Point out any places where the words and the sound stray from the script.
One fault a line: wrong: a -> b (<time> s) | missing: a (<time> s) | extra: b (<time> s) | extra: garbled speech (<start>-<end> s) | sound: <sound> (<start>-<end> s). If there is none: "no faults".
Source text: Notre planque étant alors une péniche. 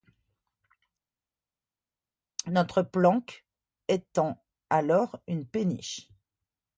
no faults